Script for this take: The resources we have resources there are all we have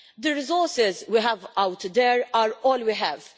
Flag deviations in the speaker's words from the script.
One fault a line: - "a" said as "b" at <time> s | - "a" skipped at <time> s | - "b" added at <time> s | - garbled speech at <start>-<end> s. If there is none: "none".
- "resources" said as "out" at 1.6 s